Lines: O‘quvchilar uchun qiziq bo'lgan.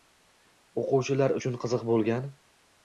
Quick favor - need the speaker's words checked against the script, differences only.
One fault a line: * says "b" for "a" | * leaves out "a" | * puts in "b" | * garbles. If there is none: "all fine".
all fine